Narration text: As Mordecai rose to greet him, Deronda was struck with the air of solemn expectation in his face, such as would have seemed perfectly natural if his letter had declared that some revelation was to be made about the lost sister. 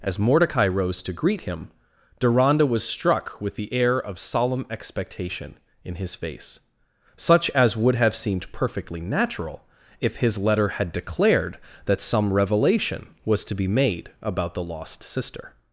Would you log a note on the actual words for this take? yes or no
no